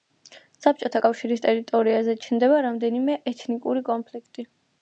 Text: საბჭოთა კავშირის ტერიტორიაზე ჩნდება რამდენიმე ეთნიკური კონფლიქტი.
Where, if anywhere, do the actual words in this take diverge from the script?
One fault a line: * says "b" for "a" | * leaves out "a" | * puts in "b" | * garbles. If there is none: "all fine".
all fine